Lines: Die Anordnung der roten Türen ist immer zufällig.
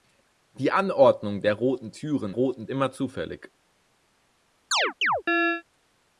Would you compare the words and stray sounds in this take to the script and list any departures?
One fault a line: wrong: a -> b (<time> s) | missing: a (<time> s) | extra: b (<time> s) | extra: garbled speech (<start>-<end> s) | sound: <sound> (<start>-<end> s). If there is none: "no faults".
wrong: ist -> roten (2.3 s)
sound: chirp (4.7-5.6 s)